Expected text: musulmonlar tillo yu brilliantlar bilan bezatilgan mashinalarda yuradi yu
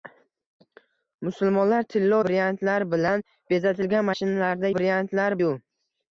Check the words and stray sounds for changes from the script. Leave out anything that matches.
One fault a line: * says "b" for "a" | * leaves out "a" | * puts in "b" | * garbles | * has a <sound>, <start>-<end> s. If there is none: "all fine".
* leaves out "yu"
* says "brilliantlar" for "yuradi"